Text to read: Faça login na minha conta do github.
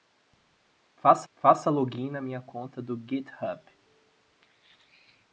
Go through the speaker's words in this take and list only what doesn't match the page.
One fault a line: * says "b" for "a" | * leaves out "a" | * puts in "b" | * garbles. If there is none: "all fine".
* puts in "faça"